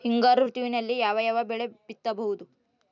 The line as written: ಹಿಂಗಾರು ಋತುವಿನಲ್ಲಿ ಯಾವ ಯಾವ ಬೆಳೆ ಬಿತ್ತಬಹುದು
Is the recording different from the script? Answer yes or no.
no